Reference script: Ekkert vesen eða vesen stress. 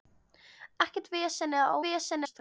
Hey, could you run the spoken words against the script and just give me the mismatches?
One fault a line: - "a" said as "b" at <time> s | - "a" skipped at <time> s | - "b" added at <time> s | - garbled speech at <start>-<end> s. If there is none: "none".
none